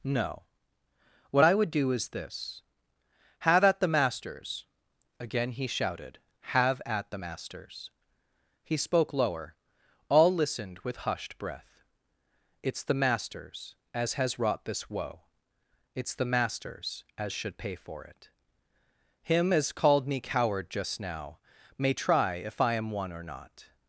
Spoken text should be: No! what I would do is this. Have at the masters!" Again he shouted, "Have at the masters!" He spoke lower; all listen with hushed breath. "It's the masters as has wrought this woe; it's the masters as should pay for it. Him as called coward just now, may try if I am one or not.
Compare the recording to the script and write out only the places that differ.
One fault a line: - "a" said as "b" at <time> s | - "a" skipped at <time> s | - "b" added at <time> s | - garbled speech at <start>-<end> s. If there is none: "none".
- "listen" said as "listened" at 10.3 s
- "me" added at 20.1 s